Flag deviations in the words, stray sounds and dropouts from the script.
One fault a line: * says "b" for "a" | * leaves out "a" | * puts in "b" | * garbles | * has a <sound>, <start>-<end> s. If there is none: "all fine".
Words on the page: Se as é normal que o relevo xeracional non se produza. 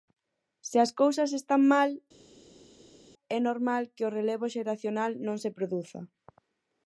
* puts in "cousas están mal"